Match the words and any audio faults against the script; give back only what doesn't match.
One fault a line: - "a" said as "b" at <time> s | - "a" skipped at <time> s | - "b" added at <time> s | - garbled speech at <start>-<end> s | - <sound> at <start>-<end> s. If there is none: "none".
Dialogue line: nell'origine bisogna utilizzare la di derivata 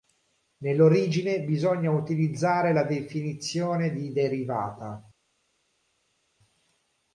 - "definizione" added at 2.8 s